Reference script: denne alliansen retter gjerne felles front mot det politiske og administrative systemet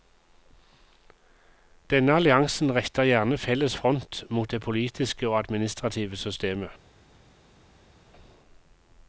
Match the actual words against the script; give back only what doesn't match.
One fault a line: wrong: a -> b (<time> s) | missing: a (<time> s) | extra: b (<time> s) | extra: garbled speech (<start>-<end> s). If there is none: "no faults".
no faults